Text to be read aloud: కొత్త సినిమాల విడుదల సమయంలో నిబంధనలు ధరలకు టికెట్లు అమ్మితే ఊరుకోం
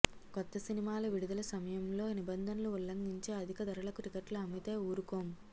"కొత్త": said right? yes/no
yes